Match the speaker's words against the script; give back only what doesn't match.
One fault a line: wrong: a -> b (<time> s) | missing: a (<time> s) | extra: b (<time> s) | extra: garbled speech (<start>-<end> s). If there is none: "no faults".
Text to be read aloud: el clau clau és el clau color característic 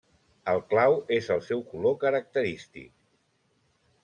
missing: clau (1.0 s)
wrong: clau -> seu (1.5 s)